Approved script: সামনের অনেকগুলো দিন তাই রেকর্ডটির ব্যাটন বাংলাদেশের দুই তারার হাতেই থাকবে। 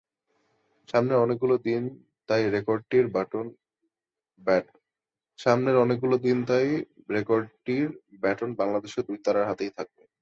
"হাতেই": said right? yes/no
yes